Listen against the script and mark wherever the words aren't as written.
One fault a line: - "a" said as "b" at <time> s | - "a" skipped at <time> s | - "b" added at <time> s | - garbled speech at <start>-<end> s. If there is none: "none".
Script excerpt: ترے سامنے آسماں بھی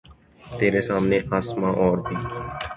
- "اور" added at 1.8 s